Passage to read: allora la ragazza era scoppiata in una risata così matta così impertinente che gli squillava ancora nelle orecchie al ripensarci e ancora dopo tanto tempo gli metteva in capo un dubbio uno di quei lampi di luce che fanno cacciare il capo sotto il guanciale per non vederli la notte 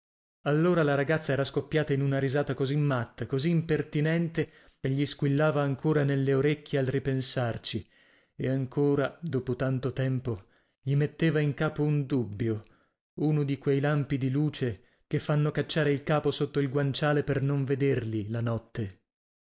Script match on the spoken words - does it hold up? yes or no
yes